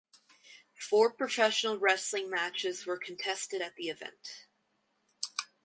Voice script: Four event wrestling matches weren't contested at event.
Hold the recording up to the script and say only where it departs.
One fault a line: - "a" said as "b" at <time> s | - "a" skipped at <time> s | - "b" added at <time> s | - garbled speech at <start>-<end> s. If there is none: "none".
- "event" said as "professional" at 1.1 s
- "weren't" said as "were" at 2.9 s
- "the" added at 3.7 s